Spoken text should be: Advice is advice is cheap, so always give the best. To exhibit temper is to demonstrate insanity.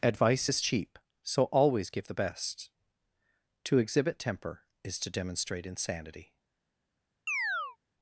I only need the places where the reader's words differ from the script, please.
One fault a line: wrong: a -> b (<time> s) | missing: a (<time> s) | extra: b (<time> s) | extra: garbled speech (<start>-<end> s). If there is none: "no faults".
missing: advice is (0.6 s)